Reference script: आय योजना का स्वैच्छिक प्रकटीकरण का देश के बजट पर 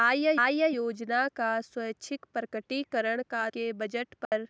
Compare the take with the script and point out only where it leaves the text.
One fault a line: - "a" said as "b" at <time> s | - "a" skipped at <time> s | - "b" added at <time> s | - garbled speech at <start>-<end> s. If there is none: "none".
- "आय" added at 0.4 s
- "देश" skipped at 3.5 s